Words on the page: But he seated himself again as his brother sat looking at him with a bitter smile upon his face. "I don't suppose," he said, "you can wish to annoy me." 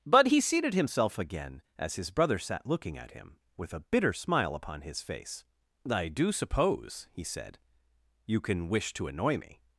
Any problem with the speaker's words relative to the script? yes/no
yes